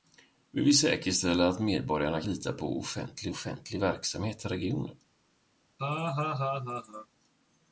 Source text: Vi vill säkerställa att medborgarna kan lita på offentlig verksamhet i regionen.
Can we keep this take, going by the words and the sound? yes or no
no